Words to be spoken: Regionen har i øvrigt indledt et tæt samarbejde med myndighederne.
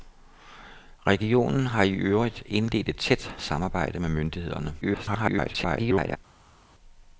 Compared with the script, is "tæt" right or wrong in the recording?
right